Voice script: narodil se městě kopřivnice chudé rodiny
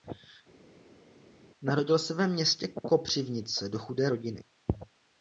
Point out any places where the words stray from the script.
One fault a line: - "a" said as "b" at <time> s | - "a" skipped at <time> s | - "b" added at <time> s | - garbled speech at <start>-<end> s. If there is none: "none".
- "ve" added at 2.1 s
- "do" added at 3.7 s